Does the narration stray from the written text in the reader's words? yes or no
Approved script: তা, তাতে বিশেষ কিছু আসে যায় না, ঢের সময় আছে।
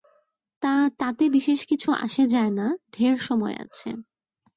no